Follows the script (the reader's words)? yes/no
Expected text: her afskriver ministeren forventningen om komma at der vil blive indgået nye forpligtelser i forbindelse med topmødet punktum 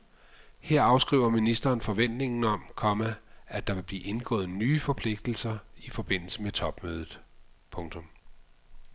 yes